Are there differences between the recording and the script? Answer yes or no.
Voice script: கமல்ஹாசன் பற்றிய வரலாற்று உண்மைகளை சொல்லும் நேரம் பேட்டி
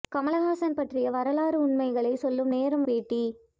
no